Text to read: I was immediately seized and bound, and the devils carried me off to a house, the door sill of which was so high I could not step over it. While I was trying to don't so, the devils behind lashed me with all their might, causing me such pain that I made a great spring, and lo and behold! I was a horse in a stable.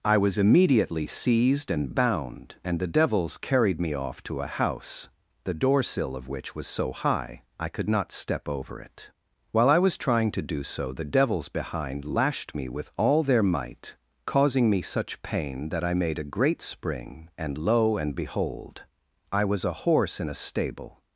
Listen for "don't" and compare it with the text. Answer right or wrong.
wrong